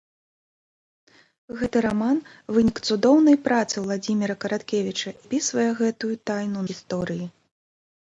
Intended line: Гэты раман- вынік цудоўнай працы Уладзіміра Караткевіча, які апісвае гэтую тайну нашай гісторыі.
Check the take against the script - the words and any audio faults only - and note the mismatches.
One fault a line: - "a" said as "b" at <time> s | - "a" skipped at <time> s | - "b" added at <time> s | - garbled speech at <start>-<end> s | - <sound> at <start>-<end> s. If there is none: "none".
- "які" skipped at 5.1 s
- "нашай" skipped at 6.6 s